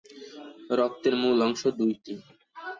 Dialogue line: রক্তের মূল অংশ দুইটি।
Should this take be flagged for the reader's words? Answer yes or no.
no